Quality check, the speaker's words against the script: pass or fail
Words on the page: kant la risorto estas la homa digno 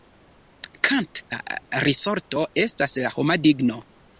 pass